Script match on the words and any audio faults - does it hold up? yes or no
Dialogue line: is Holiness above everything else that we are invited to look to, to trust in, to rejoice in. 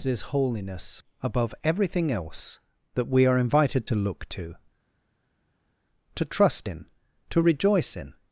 yes